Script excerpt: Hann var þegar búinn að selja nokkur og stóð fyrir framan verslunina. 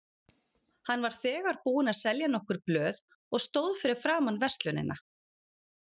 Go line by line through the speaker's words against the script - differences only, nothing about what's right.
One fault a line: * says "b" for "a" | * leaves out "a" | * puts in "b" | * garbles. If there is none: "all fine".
* puts in "blöð"